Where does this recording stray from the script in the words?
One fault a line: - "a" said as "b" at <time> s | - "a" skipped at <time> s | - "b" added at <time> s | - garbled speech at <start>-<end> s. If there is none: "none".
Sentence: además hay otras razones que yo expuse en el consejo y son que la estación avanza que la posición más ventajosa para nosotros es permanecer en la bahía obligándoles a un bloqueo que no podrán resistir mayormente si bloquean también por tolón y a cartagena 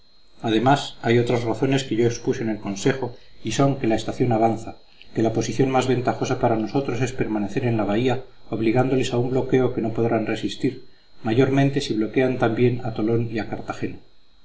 - "por" said as "a" at 12.8 s